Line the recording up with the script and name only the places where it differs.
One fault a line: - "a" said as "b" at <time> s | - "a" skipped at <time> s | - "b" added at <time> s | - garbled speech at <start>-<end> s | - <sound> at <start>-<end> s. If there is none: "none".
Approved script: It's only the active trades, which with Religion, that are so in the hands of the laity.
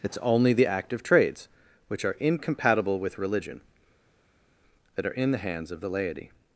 - "are incompatible" added at 2.0 s
- "so" skipped at 5.1 s